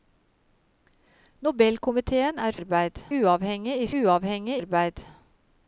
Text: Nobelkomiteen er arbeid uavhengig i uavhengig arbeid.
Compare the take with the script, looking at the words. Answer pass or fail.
pass